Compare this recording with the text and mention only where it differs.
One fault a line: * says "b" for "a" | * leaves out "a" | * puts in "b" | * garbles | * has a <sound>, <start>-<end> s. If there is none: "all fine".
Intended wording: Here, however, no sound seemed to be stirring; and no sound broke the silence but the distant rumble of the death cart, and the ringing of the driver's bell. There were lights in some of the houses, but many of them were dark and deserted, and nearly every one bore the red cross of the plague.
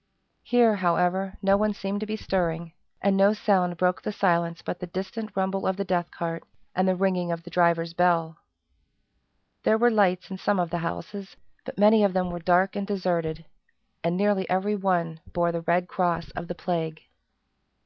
* says "one" for "sound"